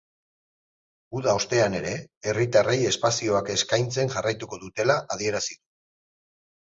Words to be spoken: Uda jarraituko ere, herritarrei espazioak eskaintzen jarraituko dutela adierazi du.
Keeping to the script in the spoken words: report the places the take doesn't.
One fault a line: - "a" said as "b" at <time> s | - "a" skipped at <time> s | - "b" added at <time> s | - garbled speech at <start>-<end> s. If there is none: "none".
- "jarraituko" said as "ostean" at 1.4 s